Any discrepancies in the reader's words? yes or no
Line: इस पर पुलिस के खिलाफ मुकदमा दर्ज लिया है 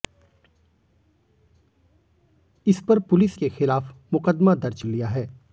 no